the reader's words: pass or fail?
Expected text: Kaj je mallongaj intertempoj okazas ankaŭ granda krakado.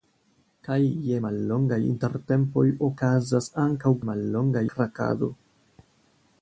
fail